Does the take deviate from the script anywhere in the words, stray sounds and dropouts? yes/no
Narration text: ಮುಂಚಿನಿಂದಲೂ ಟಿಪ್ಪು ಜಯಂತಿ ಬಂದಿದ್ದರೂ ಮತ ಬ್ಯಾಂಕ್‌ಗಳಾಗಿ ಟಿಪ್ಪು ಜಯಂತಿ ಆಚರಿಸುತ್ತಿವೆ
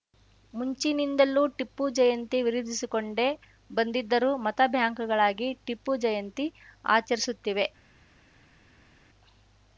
yes